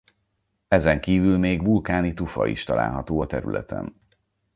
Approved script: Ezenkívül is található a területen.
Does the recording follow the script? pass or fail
fail